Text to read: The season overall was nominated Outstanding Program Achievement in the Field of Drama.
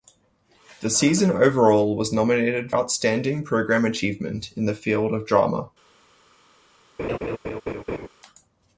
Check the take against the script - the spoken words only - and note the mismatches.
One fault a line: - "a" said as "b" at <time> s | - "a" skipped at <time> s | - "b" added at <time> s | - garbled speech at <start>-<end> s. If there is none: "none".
none